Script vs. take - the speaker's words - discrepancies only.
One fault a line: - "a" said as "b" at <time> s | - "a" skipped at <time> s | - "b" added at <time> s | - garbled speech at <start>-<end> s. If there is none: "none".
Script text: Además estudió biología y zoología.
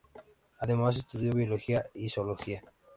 none